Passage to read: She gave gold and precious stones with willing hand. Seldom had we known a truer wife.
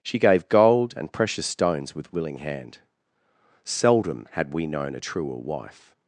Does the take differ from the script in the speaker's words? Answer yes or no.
no